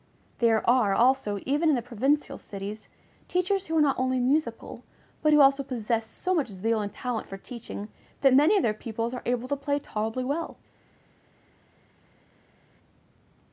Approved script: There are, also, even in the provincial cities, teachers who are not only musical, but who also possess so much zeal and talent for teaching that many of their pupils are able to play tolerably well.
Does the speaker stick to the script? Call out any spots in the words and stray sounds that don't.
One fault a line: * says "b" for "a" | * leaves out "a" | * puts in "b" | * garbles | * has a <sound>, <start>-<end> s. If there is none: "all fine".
all fine